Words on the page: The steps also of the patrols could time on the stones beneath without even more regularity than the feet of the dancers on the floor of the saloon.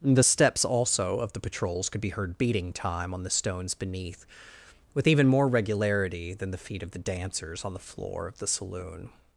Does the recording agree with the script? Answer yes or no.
no